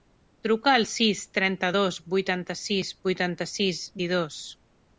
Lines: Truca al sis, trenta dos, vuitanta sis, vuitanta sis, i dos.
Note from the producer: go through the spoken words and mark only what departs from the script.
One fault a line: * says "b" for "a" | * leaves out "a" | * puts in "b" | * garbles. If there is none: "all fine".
all fine